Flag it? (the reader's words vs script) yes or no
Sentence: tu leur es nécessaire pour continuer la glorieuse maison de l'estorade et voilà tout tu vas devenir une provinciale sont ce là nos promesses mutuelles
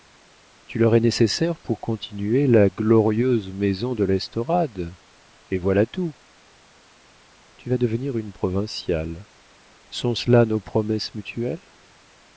no